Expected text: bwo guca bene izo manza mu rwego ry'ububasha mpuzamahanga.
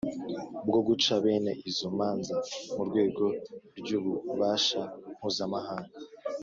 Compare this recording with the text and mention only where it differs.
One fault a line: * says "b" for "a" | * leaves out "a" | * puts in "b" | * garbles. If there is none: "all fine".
all fine